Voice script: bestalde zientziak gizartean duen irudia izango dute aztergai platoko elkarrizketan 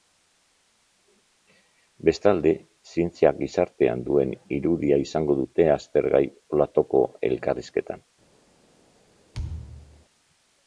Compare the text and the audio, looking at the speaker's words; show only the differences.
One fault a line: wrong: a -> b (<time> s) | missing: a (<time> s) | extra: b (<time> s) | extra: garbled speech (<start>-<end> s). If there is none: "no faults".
no faults